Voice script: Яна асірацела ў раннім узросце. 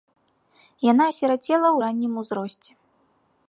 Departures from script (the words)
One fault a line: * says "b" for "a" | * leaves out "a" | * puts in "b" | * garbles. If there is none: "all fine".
all fine